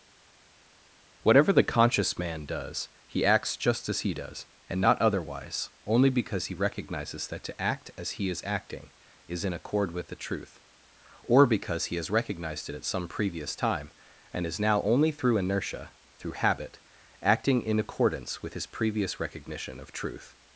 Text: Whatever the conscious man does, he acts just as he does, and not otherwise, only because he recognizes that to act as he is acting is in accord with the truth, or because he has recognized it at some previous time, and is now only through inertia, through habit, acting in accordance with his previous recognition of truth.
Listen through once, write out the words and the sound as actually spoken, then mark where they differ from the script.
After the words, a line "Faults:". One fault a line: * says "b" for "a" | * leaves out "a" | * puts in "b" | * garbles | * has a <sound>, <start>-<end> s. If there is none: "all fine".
Whatever the conscious man does, he acts just as he does, and not otherwise, only because he recognizes that to act as he is acting is in accord with the truth, or because he has recognized it at some previous time, and is now only through inertia, through habit, acting in accordance with his previous recognition of truth.
Faults:
all fine